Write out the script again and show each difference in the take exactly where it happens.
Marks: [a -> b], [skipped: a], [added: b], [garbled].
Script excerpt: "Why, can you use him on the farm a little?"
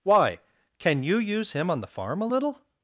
"Why, can you use him on the farm a little?"